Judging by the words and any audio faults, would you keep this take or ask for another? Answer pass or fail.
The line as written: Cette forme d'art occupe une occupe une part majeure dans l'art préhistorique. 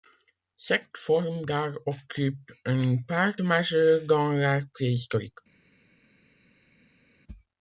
fail